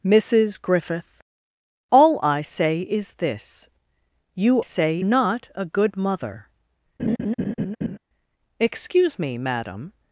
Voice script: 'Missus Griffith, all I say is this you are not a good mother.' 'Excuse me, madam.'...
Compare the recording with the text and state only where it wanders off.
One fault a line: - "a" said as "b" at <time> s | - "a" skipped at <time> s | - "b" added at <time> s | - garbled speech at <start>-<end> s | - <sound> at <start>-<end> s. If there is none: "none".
- "are" said as "say" at 4.6 s
- laugh at 7.0-8.0 s